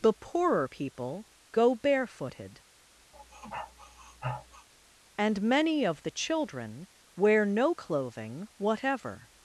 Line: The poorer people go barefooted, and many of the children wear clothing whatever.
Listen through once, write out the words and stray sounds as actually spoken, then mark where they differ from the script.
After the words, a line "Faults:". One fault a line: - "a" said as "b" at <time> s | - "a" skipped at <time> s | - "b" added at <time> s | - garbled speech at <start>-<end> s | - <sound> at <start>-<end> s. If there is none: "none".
The poorer people go barefooted, and many of the children wear no clothing whatever.
Faults:
- sniff at 3.1-4.7 s
- "no" added at 7.4 s